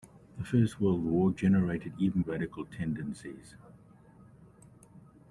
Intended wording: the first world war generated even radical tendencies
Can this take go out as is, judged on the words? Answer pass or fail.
pass